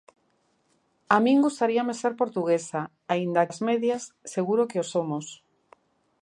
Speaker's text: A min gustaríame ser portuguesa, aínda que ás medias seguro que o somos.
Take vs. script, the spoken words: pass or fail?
fail